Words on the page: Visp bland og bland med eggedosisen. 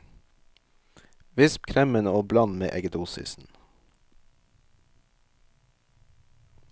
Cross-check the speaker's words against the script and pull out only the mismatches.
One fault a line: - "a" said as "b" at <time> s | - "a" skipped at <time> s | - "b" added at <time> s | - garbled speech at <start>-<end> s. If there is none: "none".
- "bland" said as "kremen" at 1.7 s